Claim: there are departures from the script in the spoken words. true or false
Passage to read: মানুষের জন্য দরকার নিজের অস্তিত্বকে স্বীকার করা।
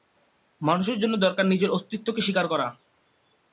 false